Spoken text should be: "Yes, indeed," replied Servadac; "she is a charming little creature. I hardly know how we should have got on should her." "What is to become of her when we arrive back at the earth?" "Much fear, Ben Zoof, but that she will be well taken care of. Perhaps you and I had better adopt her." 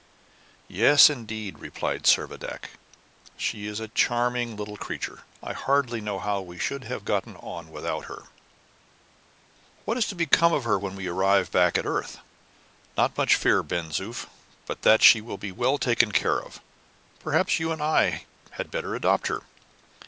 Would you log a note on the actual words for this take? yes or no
yes